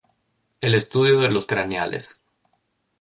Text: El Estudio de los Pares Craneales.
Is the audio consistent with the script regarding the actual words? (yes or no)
no